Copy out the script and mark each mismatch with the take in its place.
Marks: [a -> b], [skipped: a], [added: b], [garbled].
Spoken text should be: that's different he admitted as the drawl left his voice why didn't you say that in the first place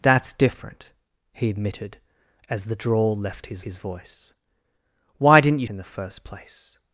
that's different he admitted as the drawl left his [added: his] voice why didn't you [skipped: say that] in the first place